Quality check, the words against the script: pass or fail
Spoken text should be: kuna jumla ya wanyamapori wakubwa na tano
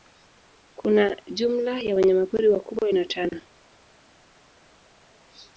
pass